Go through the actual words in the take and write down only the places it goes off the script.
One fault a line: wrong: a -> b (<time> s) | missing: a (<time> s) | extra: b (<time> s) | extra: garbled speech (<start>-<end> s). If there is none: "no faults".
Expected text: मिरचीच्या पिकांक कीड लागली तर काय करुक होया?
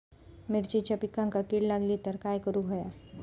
no faults